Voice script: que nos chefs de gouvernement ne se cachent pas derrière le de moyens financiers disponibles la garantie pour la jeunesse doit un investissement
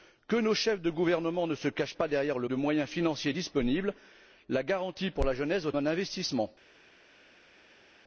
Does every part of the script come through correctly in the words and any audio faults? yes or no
yes